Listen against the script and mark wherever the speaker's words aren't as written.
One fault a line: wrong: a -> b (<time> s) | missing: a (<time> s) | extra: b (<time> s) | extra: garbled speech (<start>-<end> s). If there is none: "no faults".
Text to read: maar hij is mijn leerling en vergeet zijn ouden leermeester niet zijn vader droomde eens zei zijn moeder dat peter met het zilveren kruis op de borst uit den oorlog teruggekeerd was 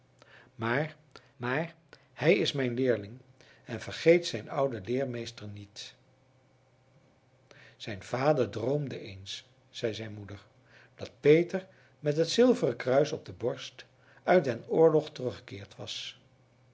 extra: maar (1.4 s)